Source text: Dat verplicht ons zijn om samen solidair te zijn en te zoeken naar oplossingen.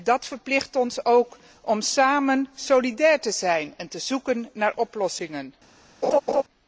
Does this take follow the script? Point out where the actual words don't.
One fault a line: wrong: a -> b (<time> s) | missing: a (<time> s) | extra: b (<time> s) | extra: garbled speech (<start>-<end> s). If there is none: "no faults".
wrong: zijn -> ook (1.1 s)